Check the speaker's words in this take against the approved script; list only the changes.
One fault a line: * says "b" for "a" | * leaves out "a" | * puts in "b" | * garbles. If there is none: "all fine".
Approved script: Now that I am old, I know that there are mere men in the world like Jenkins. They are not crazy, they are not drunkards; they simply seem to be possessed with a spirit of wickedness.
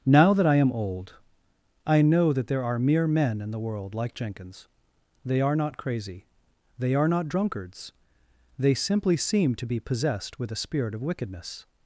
all fine